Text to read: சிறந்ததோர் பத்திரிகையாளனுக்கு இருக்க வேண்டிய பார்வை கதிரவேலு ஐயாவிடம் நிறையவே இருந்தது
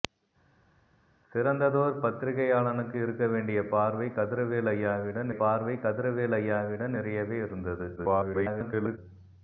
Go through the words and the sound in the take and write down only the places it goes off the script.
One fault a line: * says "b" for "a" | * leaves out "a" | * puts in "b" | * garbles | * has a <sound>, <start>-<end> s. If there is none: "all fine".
* puts in "பார்வை கதிரவேலு ஐயாவிடம்"
* garbles